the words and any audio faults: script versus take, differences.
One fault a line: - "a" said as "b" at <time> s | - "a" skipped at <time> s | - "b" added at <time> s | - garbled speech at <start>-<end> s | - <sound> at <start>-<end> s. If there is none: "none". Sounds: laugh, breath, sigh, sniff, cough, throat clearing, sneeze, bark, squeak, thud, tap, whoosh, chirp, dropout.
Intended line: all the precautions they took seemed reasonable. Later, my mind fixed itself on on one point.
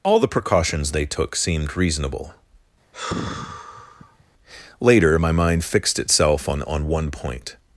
- sigh at 2.9-4.2 s